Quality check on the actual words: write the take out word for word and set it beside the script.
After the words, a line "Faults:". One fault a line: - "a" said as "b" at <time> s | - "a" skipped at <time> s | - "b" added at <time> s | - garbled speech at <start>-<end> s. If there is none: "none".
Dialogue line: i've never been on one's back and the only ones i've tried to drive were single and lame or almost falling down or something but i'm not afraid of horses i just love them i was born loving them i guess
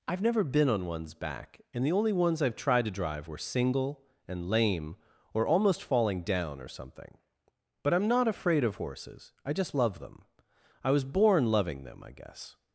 i've never been on one's back and the only ones i've tried to drive were single and lame or almost falling down or something but i'm not afraid of horses i just love them i was born loving them i guess
Faults:
none